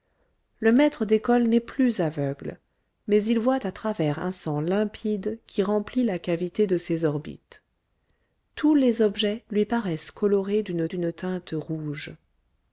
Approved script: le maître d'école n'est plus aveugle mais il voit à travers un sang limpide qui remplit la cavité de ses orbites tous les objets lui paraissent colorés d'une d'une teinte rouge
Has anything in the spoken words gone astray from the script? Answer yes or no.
no